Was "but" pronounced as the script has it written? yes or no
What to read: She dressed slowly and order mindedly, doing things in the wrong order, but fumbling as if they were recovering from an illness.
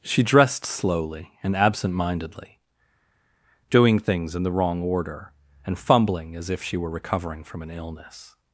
no